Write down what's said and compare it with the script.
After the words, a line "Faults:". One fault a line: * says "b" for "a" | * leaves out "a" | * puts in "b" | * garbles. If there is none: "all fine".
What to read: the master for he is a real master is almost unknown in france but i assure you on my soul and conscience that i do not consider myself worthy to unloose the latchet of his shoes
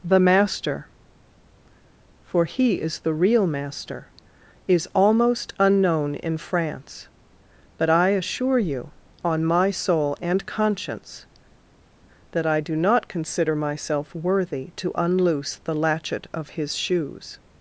the master for he is the real master is almost unknown in france but i assure you on my soul and conscience that i do not consider myself worthy to unloose the latchet of his shoes
Faults:
* says "the" for "a"